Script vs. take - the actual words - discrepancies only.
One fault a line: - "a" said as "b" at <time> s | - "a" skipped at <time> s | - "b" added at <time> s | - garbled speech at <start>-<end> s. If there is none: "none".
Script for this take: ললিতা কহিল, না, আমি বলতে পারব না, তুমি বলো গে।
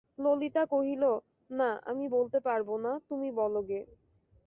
none